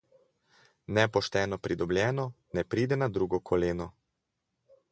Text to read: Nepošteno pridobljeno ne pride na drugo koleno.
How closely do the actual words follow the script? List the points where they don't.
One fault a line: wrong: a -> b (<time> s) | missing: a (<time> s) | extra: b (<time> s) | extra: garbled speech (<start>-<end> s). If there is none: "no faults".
no faults